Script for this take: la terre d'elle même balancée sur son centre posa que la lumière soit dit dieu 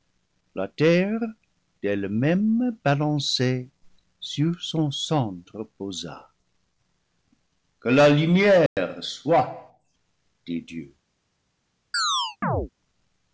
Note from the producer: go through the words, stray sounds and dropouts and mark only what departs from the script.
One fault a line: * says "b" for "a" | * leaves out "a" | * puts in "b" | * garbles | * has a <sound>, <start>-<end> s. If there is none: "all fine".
* has a dropout, 8.7-8.8 s
* has a chirp, 11.9-12.7 s